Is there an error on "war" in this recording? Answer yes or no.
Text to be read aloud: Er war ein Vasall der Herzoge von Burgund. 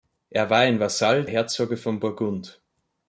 no